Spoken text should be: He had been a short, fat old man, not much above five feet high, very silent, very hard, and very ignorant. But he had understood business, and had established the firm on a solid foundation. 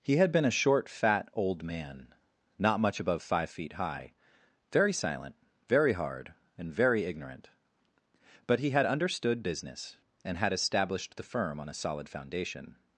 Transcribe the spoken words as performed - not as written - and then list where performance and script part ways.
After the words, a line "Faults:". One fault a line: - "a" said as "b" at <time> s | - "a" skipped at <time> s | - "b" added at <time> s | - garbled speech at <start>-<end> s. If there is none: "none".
He had been a short, fat old man, not much above five feet high, very silent, very hard, and very ignorant. But he had understood business, and had established the firm on a solid foundation.
Faults:
none